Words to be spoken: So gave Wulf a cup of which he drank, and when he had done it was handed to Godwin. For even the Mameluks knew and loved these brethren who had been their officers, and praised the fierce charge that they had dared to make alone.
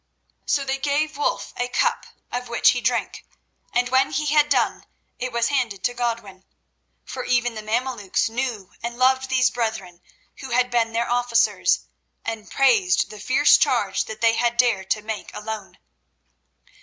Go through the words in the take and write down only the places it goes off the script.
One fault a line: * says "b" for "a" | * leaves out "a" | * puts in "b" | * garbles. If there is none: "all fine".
* puts in "they"